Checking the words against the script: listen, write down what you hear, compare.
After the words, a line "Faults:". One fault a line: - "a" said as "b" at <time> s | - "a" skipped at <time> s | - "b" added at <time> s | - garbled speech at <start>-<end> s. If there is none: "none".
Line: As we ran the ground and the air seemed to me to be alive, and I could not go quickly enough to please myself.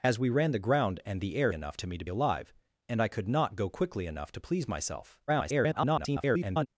As we ran the ground and the air enough to me to alive, and I could not go quickly enough to please myself. [garbled]
Faults:
- "seemed" said as "enough" at 1.5 s
- "be" skipped at 2.1 s
- garbled speech at 5.3-6.7 s